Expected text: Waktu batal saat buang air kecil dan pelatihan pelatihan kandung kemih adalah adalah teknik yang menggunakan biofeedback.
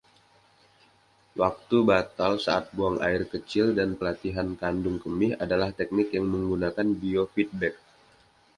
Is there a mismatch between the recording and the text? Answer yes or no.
yes